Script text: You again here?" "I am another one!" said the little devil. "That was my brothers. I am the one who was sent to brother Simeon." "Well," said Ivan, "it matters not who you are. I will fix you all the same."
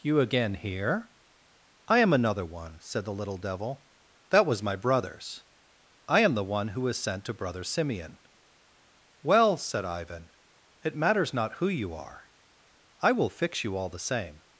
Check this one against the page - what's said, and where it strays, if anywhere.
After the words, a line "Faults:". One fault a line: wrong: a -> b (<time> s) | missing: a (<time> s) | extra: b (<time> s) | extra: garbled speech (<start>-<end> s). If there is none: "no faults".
You again here?" "I am another one!" said the little devil. "That was my brothers. I am the one who was sent to brother Simeon." "Well," said Ivan, "it matters not who you are. I will fix you all the same."
Faults:
no faults